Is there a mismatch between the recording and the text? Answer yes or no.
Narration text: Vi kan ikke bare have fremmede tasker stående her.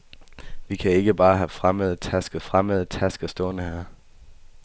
yes